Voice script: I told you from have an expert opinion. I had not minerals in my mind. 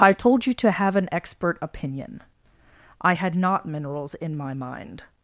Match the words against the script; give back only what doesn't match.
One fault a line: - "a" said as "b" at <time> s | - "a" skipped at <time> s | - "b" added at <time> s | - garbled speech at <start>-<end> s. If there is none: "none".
- "from" said as "to" at 0.6 s